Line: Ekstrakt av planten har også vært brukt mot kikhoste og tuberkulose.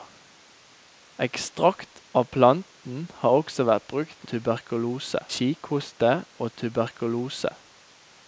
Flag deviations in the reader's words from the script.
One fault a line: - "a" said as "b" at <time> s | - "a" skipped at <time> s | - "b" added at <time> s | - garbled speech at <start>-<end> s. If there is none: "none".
- "mot" said as "tuberkulose" at 4.3 s